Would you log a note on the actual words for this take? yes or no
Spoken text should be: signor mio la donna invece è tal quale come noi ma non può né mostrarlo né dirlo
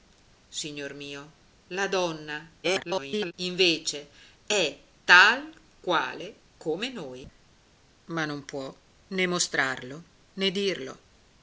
yes